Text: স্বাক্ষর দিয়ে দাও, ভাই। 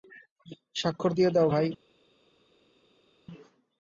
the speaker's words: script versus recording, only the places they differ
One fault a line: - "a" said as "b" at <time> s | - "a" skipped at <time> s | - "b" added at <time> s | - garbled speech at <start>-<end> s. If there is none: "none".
none